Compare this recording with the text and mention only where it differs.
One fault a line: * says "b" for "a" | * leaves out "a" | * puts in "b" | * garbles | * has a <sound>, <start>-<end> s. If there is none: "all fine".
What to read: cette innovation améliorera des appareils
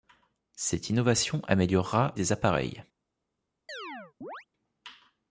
* has a chirp, 3.7-4.5 s